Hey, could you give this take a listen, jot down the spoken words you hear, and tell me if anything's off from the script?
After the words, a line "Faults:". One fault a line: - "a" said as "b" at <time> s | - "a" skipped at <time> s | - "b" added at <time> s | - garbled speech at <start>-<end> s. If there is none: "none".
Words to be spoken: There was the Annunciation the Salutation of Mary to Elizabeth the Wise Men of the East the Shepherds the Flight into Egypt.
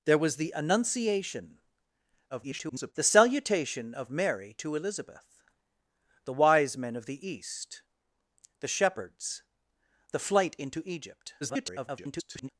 There was the Annunciation [garbled] the Salutation of Mary to Elizabeth the Wise Men of the East the Shepherds the Flight into Egypt. [garbled]
Faults:
- garbled speech at 2.3-2.9 s
- garbled speech at 11.4-12.5 s